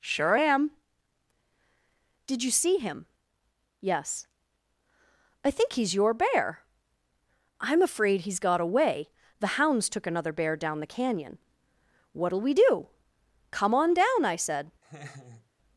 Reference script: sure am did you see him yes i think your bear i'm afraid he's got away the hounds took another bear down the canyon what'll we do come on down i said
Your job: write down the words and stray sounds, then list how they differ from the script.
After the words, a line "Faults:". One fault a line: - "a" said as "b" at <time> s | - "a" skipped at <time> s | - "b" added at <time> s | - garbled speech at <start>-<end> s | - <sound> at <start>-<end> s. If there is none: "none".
sure am did you see him yes i think he's your bear i'm afraid he's got away the hounds took another bear down the canyon what'll we do come on down i said
Faults:
- "he's" added at 5.7 s
- laugh at 14.8-15.5 s